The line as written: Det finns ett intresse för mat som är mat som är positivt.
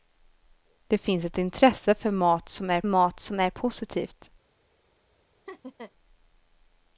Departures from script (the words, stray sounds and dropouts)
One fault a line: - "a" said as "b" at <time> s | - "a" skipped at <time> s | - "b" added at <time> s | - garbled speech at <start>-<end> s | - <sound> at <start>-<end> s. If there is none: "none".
- laugh at 5.5-5.9 s